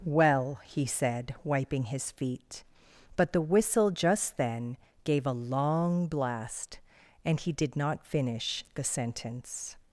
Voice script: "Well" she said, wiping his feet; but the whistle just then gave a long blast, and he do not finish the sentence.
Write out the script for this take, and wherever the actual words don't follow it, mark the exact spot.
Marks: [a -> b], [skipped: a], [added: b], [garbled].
"Well" [she -> he] said, wiping his feet; but the whistle just then gave a long blast, and he [do -> did] not finish the sentence.